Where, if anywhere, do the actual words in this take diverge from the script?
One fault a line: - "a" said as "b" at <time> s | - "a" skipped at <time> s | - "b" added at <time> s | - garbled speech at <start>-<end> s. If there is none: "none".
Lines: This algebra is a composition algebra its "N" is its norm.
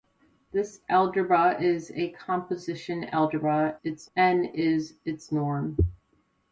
none